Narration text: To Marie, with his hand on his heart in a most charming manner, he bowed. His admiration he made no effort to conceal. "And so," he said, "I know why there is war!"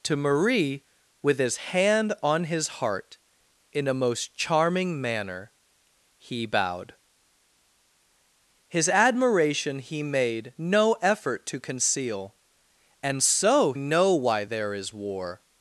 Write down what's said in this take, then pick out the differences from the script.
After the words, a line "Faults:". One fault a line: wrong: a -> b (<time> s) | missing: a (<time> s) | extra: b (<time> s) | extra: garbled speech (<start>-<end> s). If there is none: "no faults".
To Marie, with his hand on his heart in a most charming manner, he bowed. His admiration he made no effort to conceal. "And so," know why there is war!"
Faults:
missing: he said I (13.7 s)